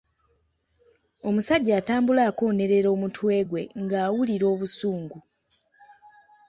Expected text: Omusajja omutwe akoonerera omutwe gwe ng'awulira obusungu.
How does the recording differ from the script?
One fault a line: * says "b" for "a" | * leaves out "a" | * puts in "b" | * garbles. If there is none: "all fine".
* says "atambula" for "omutwe"